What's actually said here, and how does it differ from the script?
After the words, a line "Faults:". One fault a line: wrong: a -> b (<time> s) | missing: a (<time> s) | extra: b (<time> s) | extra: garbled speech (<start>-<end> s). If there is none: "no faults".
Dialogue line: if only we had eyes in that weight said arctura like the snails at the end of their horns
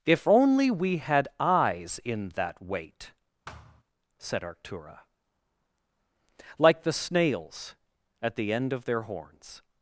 if only we had eyes in that weight said arctura like the snails at the end of their horns
Faults:
no faults